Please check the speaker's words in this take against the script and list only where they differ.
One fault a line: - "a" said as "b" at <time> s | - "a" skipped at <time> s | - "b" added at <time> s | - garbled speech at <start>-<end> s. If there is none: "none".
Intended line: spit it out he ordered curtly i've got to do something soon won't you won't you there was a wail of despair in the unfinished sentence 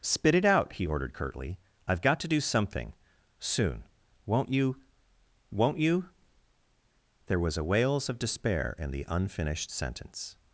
- "wail" said as "wails" at 7.6 s